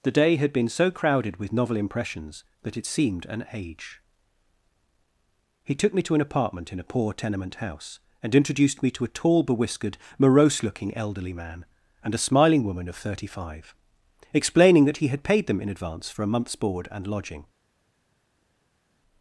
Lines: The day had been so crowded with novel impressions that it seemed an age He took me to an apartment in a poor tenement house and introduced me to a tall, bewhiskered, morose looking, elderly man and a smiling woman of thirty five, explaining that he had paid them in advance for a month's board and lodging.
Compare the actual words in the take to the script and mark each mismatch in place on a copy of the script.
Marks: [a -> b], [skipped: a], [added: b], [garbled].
The day had been so crowded with novel impressions that it seemed an age He took me to an apartment in a poor tenement house and introduced me to a tall, bewhiskered, morose looking, elderly man and a smiling woman of thirty five, explaining that he had paid them in advance for a month's board and lodging.